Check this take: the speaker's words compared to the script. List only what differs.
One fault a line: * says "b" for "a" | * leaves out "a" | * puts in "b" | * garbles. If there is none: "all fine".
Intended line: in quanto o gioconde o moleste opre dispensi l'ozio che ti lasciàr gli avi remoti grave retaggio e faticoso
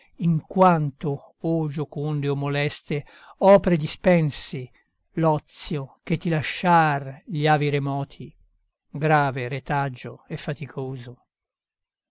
all fine